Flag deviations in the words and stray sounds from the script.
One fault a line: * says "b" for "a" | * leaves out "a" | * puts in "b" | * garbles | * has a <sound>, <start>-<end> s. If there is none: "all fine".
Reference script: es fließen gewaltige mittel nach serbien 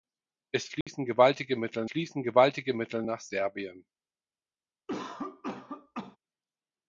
* has a dropout, 0.8-0.9 s
* puts in "fließen gewaltige mittel"
* has a cough, 4.9-6.2 s